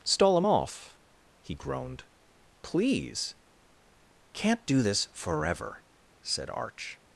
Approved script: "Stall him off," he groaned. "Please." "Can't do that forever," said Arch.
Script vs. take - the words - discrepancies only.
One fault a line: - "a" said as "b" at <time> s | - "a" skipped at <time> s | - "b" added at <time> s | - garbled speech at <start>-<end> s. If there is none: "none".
- "that" said as "this" at 4.8 s